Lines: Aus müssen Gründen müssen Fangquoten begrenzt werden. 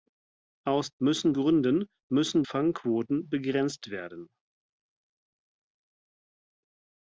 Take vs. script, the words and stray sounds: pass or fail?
pass